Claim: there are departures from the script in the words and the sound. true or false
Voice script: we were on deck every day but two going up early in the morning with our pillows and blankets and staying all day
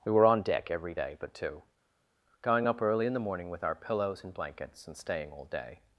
false